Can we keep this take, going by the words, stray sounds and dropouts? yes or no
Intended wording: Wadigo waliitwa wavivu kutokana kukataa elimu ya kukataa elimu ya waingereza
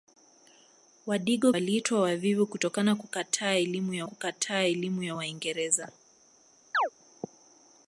no